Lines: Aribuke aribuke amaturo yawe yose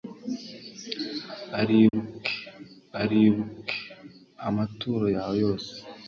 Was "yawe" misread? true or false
false